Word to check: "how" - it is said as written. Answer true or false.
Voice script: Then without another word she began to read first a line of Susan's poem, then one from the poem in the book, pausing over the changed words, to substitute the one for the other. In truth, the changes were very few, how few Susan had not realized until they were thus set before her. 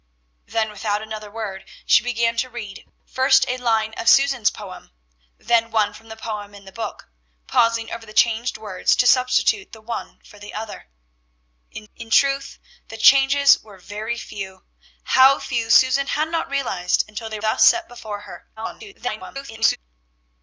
true